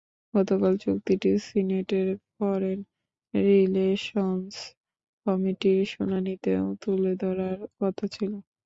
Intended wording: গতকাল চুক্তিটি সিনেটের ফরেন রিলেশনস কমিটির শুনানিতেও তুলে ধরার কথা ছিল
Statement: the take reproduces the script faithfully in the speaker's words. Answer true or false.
true